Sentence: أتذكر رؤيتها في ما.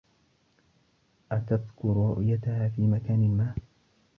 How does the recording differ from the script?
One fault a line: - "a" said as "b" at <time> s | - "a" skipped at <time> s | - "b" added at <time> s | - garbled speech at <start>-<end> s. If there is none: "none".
- "مكان" added at 2.8 s